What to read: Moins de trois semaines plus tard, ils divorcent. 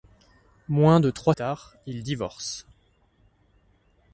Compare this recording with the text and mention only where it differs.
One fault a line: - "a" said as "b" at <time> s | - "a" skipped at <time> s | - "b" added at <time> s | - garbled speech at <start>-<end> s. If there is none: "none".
- "semaines plus" skipped at 1.4 s